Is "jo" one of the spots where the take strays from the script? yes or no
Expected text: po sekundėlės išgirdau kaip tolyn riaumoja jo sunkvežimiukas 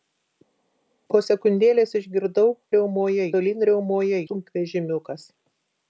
yes